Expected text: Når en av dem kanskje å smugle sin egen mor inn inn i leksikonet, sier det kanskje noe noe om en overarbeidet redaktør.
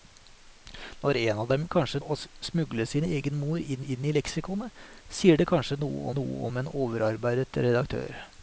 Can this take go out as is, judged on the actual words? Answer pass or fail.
pass